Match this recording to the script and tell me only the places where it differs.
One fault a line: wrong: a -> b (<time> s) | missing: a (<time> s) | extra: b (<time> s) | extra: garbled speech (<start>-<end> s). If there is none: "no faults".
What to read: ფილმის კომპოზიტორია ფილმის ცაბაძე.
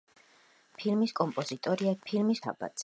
no faults